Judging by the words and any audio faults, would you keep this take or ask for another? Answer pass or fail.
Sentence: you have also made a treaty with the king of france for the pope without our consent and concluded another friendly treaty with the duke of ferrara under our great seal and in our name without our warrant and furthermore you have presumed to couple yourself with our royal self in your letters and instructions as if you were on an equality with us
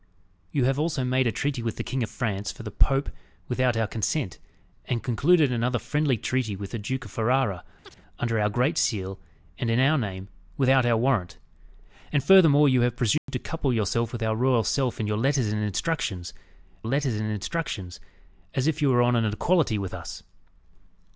fail